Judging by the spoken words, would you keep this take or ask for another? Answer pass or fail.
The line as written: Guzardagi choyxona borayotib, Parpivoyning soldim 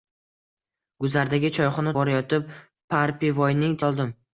pass